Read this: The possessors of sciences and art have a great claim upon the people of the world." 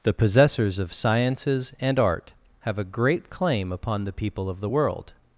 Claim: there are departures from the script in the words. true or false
false